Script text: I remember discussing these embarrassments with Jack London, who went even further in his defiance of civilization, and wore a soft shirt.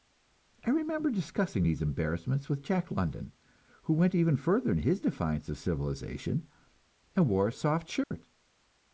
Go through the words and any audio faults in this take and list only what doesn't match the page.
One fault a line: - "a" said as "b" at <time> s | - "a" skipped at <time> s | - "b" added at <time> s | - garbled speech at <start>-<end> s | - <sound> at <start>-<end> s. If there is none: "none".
- dropout at 8.0-8.1 s